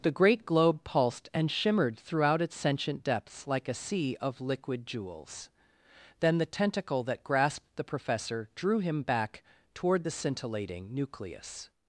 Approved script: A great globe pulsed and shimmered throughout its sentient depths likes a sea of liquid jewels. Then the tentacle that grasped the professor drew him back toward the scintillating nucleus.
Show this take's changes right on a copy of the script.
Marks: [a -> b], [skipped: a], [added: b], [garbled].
[A -> The] great globe pulsed and shimmered throughout its sentient depths [likes -> like] a sea of liquid jewels. Then the tentacle that grasped the professor drew him back toward the scintillating nucleus.